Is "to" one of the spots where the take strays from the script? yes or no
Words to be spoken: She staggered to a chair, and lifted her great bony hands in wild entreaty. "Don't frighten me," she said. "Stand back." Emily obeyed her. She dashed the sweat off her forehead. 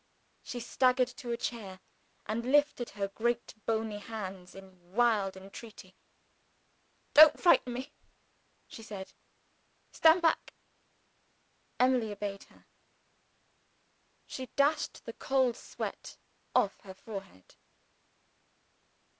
no